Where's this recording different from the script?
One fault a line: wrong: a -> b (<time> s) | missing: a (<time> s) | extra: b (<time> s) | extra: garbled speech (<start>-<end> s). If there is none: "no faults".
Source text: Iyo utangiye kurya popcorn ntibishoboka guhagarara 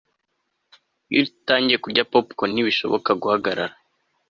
no faults